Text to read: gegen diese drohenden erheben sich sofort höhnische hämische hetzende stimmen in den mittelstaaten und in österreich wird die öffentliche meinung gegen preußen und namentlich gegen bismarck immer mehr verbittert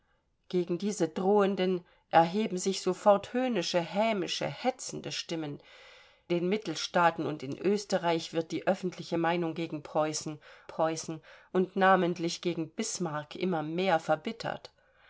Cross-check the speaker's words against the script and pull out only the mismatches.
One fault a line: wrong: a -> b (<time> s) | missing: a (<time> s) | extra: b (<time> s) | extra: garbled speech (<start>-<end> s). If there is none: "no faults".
missing: in (5.6 s)
extra: preußen (10.7 s)